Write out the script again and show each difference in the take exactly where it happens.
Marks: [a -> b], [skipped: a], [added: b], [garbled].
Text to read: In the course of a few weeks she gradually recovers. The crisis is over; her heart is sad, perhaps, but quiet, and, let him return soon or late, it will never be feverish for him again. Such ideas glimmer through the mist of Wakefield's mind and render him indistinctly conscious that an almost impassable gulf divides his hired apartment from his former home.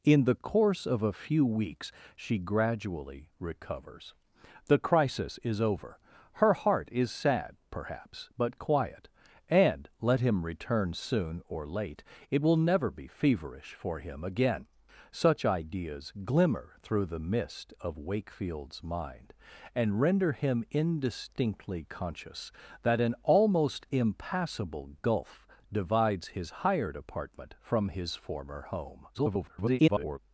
In the course of a few weeks she gradually recovers. The crisis is over; her heart is sad, perhaps, but quiet, and, let him return soon or late, it will never be feverish for him again. Such ideas glimmer through the mist of Wakefield's mind and render him indistinctly conscious that an almost impassable gulf divides his hired apartment from his former home. [garbled]